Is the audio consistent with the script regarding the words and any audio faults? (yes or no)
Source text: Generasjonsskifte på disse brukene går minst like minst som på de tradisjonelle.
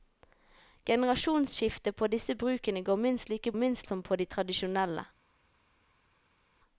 yes